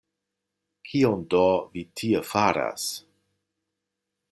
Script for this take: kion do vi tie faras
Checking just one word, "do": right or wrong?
right